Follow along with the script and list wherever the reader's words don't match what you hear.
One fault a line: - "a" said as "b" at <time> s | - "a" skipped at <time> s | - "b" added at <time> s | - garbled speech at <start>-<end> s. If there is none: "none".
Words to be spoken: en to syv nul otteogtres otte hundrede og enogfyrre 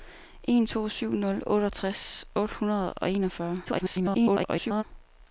- garbled speech at 3.7-4.8 s